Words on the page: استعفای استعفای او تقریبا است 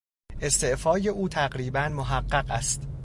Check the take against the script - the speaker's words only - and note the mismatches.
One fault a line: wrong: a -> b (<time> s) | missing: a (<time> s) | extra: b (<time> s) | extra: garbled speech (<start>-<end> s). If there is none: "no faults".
missing: استعفای (1.1 s)
extra: محقق (1.8 s)